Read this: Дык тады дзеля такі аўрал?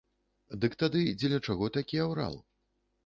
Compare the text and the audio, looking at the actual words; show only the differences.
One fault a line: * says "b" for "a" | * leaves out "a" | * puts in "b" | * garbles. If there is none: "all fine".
* puts in "чаго"